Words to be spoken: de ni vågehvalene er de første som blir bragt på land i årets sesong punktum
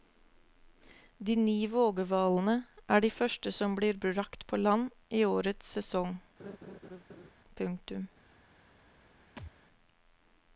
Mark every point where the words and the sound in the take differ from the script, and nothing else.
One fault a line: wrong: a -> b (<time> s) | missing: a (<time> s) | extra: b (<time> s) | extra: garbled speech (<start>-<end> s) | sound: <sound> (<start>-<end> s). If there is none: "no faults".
sound: laugh (6.4-7.3 s)
sound: thud (9.4-9.5 s)